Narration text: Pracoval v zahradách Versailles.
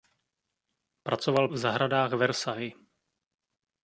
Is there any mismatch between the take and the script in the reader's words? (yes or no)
no